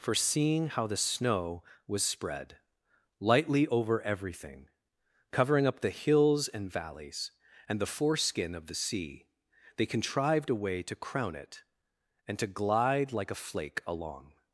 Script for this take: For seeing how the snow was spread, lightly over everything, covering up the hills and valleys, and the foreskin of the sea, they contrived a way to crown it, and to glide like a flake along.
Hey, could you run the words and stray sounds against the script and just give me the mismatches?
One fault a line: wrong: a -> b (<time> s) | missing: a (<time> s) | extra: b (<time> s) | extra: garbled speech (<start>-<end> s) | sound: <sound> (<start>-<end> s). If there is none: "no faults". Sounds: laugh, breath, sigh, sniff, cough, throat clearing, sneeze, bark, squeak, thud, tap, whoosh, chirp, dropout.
no faults